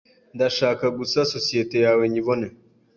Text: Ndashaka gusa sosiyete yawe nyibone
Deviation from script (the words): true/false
false